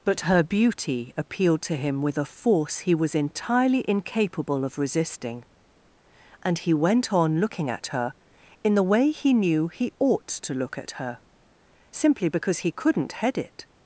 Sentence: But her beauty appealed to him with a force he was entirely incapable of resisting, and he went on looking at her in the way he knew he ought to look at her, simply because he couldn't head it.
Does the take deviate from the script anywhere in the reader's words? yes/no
no